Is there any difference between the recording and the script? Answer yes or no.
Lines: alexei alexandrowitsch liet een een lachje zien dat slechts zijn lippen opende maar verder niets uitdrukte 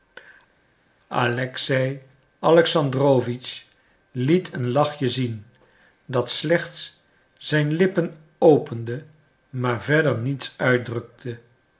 yes